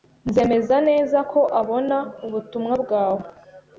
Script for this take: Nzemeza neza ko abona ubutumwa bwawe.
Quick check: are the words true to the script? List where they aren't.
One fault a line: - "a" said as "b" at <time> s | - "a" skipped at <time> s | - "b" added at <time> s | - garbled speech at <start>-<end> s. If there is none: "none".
none